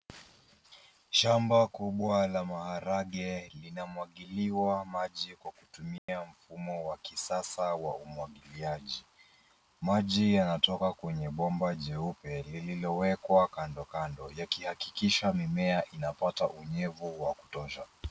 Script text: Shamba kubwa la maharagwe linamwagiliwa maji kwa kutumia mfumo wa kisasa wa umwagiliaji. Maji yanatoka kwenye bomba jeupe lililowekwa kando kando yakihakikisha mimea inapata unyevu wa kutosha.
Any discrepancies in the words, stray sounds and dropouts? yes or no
yes